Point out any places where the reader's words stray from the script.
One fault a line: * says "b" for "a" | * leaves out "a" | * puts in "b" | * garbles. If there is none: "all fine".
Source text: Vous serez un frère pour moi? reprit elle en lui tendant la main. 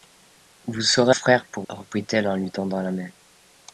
* leaves out "un"
* leaves out "moi"